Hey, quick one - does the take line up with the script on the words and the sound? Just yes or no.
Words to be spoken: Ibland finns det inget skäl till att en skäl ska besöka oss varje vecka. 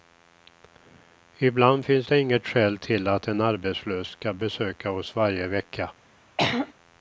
no